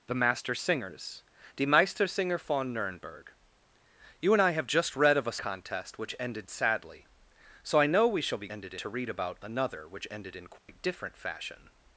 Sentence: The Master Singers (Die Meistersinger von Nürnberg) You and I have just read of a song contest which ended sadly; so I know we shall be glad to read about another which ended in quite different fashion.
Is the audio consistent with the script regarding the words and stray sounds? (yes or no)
no